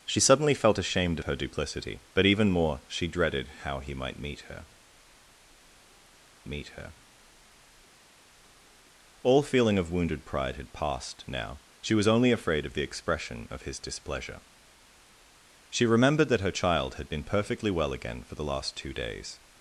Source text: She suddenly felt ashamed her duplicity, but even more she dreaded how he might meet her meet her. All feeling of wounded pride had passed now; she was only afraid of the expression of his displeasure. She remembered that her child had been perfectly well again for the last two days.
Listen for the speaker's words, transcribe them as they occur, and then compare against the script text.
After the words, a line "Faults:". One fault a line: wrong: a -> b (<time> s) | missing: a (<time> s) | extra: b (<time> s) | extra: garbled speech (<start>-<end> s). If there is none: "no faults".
She suddenly felt ashamed her duplicity, but even more she dreaded how he might meet her meet her. All feeling of wounded pride had passed now; she was only afraid of the expression of his displeasure. She remembered that her child had been perfectly well again for the last two days.
Faults:
no faults